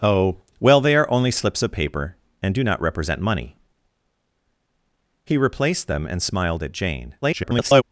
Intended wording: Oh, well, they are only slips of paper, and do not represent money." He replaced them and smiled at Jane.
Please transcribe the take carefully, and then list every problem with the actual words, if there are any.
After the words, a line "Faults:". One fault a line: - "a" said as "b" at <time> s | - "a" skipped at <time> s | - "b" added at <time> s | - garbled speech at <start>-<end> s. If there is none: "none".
Oh, well, they are only slips of paper, and do not represent money." He replaced them and smiled at Jane. [garbled]
Faults:
- garbled speech at 7.2-7.8 s